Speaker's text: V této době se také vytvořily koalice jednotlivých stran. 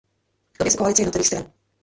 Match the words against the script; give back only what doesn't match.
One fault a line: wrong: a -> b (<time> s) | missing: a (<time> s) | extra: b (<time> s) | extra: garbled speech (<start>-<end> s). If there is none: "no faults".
missing: této (0.6 s)
missing: také vytvořily (0.8 s)